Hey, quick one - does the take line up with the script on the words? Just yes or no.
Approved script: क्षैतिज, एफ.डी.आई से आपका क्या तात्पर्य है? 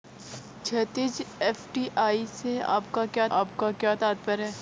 no